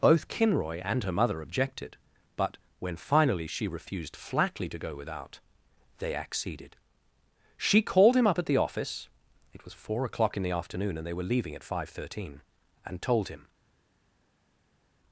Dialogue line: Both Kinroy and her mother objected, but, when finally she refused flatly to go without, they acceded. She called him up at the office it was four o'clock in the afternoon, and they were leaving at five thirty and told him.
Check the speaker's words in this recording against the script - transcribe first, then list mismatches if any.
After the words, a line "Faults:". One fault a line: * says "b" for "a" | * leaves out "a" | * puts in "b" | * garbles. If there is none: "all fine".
Both Kinroy and her mother objected, but, when finally she refused flatly to go without, they acceded. She called him up at the office it was four o'clock in the afternoon, and they were leaving at five thirteen and told him.
Faults:
* says "thirteen" for "thirty"